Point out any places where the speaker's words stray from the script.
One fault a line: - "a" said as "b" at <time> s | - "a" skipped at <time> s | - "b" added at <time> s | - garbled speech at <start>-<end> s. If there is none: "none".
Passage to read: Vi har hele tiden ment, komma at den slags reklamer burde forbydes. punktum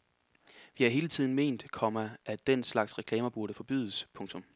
none